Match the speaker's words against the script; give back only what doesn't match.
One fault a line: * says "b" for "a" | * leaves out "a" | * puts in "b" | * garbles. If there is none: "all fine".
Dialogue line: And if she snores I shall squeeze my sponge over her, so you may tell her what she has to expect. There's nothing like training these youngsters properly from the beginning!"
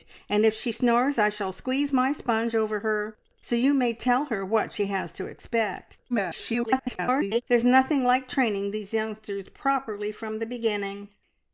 * garbles